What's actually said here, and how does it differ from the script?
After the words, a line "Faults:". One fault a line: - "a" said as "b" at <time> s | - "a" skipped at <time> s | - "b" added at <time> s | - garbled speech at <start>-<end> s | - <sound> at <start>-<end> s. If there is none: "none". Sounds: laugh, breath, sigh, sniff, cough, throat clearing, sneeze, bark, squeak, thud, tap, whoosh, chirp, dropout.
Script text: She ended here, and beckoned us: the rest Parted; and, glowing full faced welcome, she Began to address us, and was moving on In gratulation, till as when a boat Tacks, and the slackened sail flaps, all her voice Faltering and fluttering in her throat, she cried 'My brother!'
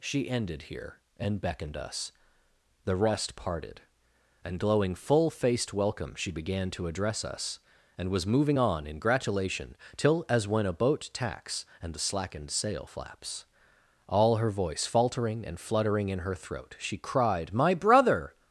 She ended here, and beckoned us: the rest Parted; and, glowing full faced welcome, she Began to address us, and was moving on In gratulation, till as when a boat Tacks, and the slackened sail flaps, all her voice Faltering and fluttering in her throat, she cried 'My brother!'
Faults:
none